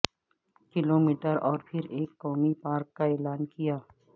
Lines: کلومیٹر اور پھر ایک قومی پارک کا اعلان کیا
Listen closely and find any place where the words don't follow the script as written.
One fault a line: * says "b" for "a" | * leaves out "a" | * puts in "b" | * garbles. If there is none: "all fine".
all fine